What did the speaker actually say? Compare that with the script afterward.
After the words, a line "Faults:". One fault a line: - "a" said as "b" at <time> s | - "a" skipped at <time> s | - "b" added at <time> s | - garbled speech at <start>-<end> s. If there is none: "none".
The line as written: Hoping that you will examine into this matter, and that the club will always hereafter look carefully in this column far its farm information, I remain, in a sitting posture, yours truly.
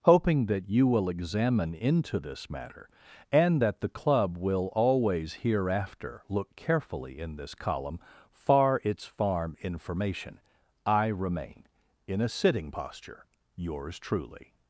Hoping that you will examine into this matter, and that the club will always hereafter look carefully in this column far its farm information, I remain, in a sitting posture, yours truly.
Faults:
none